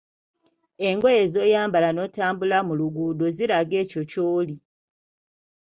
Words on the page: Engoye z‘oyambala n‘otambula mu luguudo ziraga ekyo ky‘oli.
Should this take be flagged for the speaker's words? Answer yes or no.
no